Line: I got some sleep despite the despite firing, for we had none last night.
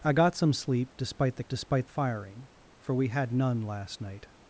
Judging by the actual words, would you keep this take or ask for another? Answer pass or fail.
pass